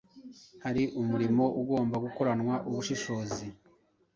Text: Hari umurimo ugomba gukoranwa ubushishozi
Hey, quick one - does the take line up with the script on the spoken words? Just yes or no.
yes